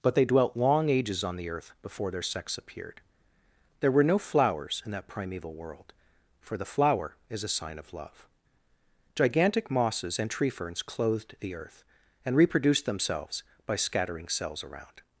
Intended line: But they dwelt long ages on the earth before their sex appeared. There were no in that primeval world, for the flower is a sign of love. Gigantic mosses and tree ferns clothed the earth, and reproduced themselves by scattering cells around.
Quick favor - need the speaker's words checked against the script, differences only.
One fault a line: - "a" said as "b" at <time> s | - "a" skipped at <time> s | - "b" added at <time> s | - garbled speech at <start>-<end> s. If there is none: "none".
- "flowers" added at 4.2 s